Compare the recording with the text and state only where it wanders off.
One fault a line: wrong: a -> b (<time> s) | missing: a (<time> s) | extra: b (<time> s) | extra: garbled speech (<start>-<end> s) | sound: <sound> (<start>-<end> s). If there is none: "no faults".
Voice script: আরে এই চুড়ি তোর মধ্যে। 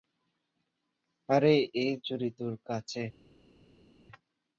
wrong: মধ্যে -> কাছে (2.7 s)